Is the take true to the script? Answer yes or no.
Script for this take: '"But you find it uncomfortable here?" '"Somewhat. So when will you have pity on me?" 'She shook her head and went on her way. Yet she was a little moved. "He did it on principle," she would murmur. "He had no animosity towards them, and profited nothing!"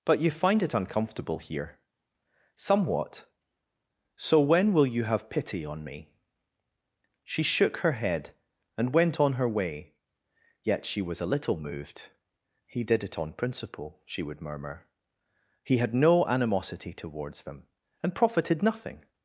yes